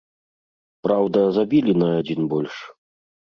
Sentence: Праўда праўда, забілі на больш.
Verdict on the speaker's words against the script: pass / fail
fail